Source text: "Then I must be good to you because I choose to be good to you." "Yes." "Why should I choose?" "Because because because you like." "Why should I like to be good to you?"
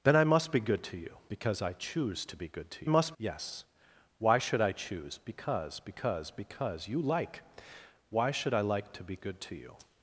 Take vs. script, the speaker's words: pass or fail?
fail